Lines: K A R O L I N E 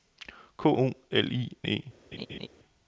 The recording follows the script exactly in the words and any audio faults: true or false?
false